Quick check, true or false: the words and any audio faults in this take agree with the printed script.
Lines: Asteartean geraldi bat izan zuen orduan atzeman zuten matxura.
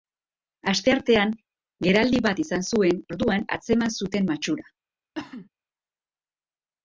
false